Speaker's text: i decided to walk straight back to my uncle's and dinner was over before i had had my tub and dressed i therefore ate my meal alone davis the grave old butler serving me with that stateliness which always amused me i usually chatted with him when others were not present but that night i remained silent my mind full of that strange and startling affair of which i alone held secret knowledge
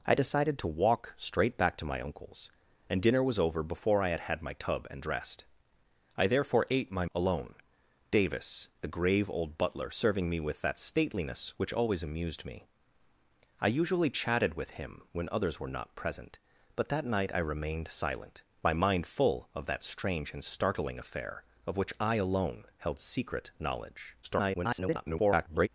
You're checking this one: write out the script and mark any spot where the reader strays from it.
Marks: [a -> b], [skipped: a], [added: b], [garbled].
i decided to walk straight back to my uncle's and dinner was over before i had had my tub and dressed i therefore ate my [skipped: meal] alone davis the grave old butler serving me with that stateliness which always amused me i usually chatted with him when others were not present but that night i remained silent my mind full of that strange and startling affair of which i alone held secret knowledge [garbled]